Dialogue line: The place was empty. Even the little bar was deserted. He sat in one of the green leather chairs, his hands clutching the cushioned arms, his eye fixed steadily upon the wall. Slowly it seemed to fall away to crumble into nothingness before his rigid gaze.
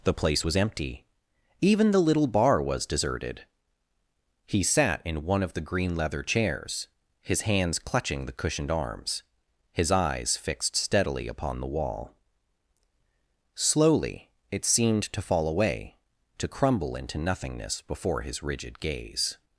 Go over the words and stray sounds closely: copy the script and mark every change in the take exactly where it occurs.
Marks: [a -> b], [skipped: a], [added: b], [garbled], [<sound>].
The place was empty. Even the little bar was deserted. He sat in one of the green leather chairs, his hands clutching the cushioned arms, his [eye -> eyes] fixed steadily upon the wall. Slowly it seemed to fall away to crumble into nothingness before his rigid gaze.